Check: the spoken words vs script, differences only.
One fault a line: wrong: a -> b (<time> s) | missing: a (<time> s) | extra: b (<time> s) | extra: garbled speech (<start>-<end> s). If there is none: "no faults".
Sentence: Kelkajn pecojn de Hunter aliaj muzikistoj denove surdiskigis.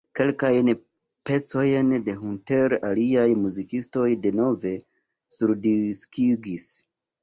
no faults